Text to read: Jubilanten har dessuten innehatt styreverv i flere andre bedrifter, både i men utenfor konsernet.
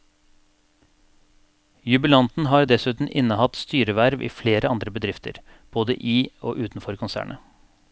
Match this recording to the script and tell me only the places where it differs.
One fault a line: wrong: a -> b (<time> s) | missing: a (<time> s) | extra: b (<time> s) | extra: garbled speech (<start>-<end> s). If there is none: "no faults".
wrong: men -> og (6.4 s)